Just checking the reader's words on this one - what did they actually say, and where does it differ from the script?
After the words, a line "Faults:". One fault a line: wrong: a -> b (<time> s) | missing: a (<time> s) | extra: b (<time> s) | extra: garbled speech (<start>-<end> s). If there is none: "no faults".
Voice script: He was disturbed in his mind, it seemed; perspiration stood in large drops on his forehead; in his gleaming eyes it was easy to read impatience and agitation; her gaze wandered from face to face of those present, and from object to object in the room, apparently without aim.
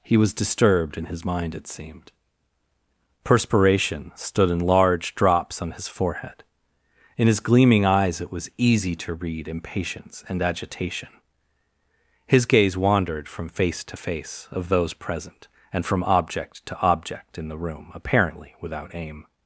He was disturbed in his mind, it seemed; perspiration stood in large drops on his forehead; in his gleaming eyes it was easy to read impatience and agitation; his gaze wandered from face to face of those present, and from object to object in the room, apparently without aim.
Faults:
wrong: her -> his (12.2 s)